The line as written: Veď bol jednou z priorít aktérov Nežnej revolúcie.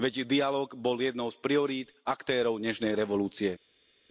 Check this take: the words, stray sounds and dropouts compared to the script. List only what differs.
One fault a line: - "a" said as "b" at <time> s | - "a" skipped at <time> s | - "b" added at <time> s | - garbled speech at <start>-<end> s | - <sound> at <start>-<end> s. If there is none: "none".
- "dialóg" added at 0.2 s